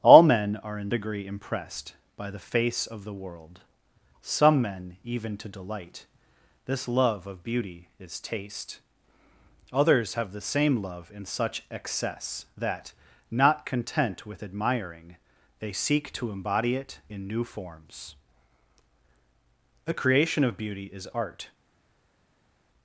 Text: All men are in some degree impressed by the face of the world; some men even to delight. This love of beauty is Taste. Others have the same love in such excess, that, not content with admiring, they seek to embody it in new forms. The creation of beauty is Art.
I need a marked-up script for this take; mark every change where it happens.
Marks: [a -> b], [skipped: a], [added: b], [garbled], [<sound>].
All men are in [skipped: some] degree impressed by the face of the world; some men even to delight. This love of beauty is Taste. Others have the same love in such excess, that, not content with admiring, they seek to embody it in new forms. The creation of beauty is Art.